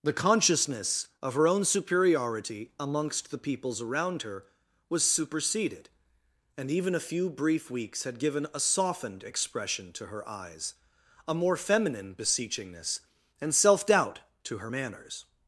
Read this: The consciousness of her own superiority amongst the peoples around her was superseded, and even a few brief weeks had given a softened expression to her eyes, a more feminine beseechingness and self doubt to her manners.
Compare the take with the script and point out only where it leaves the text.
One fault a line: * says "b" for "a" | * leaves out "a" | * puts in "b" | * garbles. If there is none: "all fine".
all fine